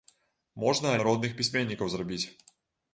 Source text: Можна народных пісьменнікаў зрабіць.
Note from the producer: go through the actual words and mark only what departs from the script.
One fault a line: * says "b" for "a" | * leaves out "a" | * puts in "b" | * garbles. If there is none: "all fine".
all fine